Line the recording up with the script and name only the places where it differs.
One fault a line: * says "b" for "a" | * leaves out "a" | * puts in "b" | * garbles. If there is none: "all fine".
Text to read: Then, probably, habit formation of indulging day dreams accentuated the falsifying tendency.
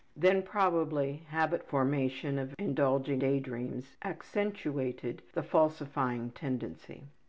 all fine